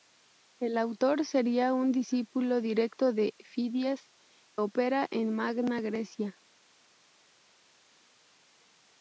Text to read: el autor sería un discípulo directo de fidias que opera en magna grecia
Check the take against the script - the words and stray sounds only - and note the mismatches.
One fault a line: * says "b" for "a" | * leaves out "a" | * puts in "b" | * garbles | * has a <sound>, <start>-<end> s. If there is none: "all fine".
* leaves out "que"